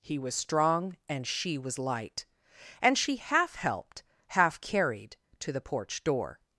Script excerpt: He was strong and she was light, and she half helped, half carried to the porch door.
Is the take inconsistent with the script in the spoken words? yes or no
no